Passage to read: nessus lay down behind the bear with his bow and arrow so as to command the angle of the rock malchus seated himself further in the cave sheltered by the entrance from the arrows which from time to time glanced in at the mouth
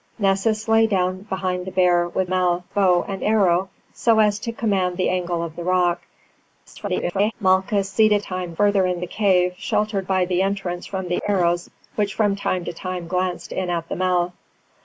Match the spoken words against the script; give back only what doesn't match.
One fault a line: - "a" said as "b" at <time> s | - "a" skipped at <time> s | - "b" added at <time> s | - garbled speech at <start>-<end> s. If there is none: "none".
- "his" said as "mouth" at 2.3 s
- garbled speech at 6.7-7.3 s
- "himself" said as "time" at 8.2 s